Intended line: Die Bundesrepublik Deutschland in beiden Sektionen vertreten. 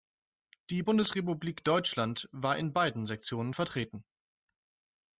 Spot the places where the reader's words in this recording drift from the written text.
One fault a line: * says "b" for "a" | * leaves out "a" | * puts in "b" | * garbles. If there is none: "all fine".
* puts in "war"